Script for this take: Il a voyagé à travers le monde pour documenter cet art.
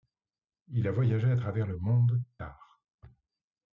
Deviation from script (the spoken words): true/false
true